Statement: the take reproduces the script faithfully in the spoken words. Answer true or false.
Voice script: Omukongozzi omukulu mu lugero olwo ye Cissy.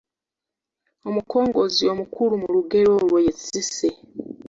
true